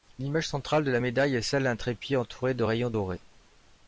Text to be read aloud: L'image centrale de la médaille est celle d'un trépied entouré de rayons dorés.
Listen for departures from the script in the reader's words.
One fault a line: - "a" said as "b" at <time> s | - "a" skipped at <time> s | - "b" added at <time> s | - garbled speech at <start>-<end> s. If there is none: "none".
none